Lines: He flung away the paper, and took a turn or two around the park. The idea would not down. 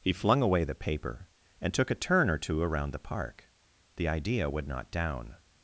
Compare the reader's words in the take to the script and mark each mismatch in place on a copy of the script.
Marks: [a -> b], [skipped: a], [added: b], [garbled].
He flung away the paper, and took a turn or two around the park. The idea would not down.